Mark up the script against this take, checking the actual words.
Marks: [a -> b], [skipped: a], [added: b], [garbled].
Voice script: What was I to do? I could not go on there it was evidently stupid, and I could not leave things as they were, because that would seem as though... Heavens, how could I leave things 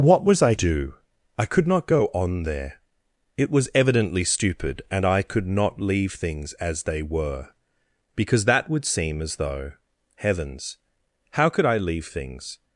What was I [skipped: to] do? I could not go on there it was evidently stupid, and I could not leave things as they were, because that would seem as though... Heavens, how could I leave things